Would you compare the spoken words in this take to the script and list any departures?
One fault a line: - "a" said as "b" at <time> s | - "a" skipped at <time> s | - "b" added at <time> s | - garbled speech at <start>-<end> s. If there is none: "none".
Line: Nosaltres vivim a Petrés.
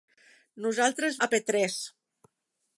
- "vivim" skipped at 1.2 s